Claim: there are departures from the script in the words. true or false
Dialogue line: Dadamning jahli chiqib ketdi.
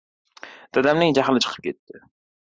false